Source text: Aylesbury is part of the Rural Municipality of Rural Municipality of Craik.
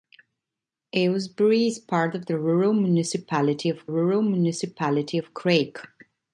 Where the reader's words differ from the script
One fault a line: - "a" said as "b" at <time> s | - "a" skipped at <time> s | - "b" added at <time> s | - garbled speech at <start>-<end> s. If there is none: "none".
none